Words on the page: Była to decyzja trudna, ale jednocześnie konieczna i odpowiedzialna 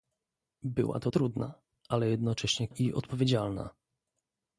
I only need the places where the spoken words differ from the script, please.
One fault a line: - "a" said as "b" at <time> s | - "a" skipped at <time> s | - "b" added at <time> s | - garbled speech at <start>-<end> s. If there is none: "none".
- "decyzja" skipped at 1.1 s
- "konieczna" skipped at 2.7 s